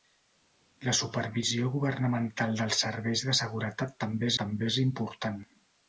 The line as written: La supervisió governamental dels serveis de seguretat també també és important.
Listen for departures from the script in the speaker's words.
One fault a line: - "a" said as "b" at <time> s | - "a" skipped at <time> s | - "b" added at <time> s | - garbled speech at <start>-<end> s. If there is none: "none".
none